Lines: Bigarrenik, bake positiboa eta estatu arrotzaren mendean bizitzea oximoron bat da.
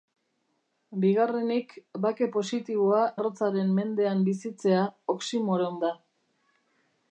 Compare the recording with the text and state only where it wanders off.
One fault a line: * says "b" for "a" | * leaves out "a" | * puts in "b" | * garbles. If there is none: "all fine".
* leaves out "eta estatu"
* leaves out "bat"